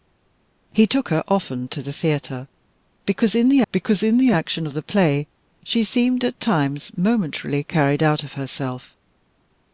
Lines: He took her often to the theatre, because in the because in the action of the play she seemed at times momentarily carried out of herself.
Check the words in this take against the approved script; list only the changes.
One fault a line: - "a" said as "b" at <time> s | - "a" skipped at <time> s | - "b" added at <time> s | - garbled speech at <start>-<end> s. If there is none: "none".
none